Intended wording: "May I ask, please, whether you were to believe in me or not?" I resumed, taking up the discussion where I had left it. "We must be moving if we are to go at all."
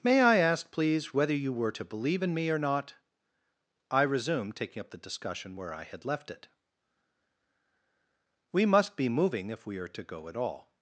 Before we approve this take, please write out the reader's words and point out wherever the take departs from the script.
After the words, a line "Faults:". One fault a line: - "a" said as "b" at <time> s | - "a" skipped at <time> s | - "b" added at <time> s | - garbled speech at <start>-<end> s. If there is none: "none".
"May I ask, please, whether you were to believe in me or not?" I resumed, taking up the discussion where I had left it. "We must be moving if we are to go at all."
Faults:
none